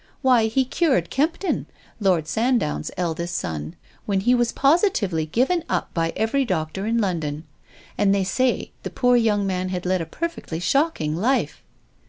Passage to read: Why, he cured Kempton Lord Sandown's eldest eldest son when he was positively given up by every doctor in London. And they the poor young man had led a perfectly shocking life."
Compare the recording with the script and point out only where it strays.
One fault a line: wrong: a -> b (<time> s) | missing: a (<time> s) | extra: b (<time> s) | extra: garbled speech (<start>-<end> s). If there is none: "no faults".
missing: eldest (3.4 s)
extra: say (8.2 s)